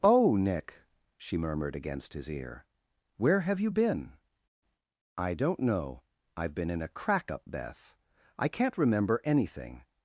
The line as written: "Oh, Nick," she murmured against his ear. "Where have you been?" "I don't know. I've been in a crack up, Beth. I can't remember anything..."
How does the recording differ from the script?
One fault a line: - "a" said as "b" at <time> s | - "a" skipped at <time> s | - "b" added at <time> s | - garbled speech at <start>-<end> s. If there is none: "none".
none